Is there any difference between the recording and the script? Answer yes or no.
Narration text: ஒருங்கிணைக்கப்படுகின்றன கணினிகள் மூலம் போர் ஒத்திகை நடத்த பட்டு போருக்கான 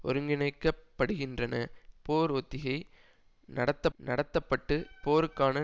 yes